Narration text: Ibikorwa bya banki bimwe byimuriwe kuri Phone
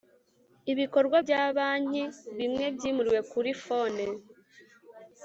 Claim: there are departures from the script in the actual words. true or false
false